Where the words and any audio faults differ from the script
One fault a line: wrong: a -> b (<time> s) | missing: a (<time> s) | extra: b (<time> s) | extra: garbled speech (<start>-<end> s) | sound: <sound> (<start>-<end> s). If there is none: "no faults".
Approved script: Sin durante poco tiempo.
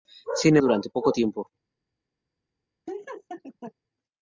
sound: laugh (2.9-3.7 s)